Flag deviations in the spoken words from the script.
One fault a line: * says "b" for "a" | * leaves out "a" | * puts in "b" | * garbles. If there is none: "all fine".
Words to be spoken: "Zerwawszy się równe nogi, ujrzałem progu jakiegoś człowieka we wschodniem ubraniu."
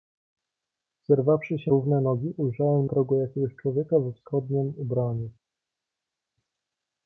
all fine